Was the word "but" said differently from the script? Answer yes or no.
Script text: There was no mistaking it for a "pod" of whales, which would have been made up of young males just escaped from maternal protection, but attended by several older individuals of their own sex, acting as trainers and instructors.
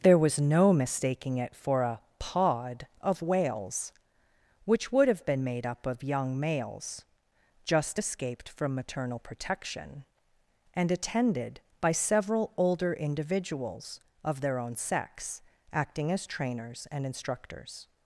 yes